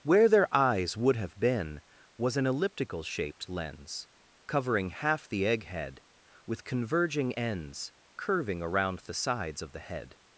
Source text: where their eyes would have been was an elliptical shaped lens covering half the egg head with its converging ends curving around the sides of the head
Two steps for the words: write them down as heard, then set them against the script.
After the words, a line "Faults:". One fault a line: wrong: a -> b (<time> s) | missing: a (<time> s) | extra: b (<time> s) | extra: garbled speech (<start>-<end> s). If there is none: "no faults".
where their eyes would have been was an elliptical shaped lens covering half the egg head with converging ends curving around the sides of the head
Faults:
missing: its (6.6 s)